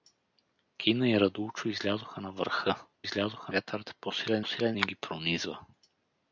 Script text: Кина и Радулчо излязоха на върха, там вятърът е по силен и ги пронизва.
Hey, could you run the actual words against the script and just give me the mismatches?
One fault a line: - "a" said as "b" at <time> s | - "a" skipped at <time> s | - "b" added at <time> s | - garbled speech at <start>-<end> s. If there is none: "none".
- "там" said as "излязоха" at 3.0 s
- "силен" added at 4.4 s